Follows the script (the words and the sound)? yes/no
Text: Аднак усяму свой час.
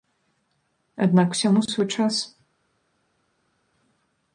yes